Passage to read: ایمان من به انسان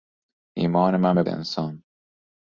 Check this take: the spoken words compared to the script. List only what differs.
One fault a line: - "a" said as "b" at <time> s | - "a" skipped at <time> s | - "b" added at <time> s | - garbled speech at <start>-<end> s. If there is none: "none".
none